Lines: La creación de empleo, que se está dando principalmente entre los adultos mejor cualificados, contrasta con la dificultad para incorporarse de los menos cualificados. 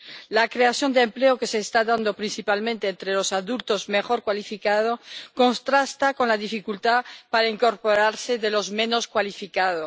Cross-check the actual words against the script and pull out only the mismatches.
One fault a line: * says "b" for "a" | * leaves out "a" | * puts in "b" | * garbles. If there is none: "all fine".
all fine